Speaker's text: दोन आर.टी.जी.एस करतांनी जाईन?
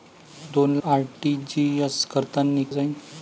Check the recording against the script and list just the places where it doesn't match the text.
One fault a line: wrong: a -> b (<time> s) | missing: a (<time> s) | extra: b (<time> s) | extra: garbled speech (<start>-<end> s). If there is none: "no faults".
no faults